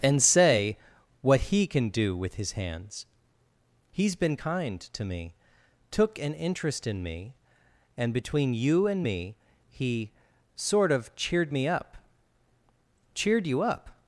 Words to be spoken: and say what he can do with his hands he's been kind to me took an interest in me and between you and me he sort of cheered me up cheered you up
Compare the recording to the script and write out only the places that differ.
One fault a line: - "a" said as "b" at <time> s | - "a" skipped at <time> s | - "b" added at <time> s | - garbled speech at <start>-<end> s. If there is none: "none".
none